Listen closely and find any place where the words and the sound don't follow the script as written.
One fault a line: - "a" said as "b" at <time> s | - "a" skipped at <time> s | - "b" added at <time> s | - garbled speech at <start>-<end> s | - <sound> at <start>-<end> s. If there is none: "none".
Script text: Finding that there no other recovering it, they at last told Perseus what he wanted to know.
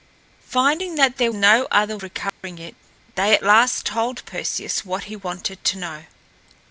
- dropout at 2.3-2.4 s